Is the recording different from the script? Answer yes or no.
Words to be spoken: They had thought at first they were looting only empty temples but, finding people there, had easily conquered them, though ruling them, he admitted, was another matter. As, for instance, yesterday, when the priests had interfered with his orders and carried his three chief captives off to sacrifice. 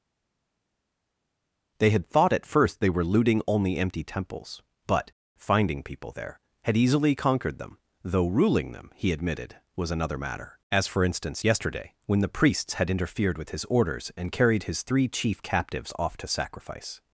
no